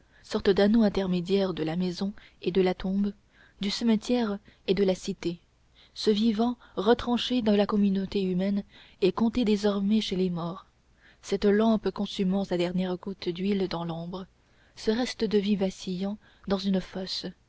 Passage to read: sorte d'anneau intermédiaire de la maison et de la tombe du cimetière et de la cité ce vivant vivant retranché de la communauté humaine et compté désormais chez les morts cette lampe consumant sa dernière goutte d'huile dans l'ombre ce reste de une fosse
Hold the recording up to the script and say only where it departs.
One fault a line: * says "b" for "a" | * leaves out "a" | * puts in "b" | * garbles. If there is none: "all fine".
* leaves out "vivant"
* puts in "vie vacillant dans"